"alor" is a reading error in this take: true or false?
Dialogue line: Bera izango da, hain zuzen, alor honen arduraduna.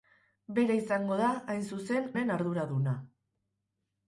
true